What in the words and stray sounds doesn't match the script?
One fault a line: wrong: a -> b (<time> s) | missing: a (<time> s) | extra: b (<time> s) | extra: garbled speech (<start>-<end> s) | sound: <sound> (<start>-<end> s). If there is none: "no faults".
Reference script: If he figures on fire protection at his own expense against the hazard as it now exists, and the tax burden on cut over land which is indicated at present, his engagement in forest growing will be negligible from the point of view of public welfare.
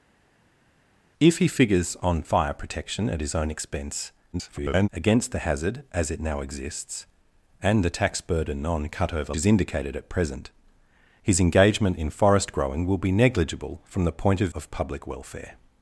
extra: garbled speech (4.3-4.9 s)
missing: land which (9.3 s)
missing: view (14.5 s)